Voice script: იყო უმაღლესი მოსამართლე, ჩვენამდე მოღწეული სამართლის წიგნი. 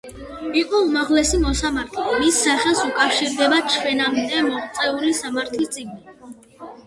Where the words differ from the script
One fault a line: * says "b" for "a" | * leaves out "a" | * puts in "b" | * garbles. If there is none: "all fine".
* puts in "მის სახელს უკავშირდება"